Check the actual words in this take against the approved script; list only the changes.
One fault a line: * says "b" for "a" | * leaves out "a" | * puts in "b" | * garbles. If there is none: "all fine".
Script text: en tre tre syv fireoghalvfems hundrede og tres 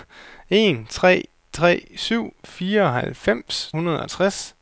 all fine